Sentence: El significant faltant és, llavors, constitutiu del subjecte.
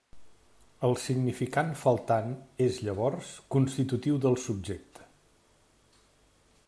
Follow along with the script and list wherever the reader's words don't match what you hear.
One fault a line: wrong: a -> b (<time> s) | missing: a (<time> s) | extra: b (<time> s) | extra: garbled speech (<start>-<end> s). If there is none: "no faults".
no faults